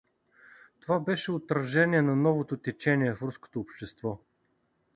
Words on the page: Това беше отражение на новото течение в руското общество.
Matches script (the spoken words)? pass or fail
pass